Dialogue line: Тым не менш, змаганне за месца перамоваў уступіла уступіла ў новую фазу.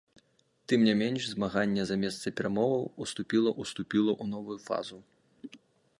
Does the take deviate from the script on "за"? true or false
false